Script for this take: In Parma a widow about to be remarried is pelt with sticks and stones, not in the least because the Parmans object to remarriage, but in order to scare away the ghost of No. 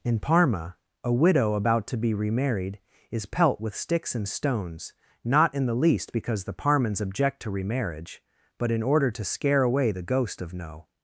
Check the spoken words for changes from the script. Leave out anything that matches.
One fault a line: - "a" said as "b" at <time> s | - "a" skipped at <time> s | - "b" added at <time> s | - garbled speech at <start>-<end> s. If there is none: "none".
none